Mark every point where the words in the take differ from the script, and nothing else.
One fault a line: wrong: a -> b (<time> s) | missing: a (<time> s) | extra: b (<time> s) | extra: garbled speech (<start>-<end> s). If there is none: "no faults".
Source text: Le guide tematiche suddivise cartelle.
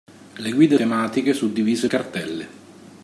no faults